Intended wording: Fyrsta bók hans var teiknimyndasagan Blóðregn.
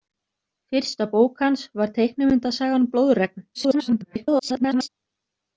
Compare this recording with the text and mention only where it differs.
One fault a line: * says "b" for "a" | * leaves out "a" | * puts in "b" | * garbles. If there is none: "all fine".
* garbles